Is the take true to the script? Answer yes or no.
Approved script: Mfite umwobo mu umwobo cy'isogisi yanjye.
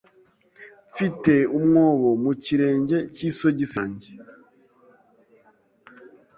no